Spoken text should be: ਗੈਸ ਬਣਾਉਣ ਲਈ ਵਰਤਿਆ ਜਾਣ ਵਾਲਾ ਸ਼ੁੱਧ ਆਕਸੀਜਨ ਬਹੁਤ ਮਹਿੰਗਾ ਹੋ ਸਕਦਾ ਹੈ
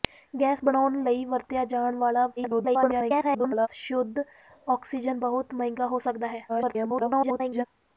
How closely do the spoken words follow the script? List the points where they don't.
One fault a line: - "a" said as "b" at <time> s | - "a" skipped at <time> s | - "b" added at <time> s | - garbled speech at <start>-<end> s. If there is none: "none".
- garbled speech at 2.4-3.7 s
- garbled speech at 6.5-7.7 s